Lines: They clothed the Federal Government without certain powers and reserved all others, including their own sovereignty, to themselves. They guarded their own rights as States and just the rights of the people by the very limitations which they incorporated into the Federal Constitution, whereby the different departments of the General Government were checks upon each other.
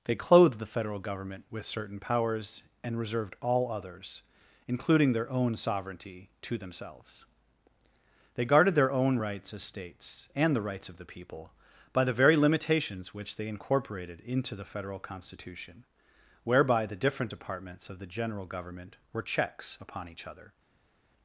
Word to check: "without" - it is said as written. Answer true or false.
false